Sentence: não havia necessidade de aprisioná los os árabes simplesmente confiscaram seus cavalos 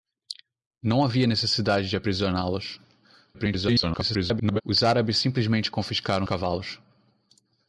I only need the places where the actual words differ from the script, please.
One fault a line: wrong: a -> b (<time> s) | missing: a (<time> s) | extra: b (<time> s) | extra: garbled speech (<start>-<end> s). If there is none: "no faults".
extra: garbled speech (3.3-4.6 s)
missing: seus (6.3 s)